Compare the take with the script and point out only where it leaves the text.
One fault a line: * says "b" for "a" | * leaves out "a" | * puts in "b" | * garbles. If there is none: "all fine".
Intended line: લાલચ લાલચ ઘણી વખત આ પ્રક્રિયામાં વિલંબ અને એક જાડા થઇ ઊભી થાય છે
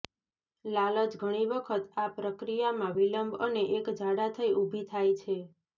* leaves out "લાલચ"